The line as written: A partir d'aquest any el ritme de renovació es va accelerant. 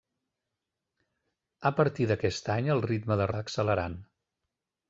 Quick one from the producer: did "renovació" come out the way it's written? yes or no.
no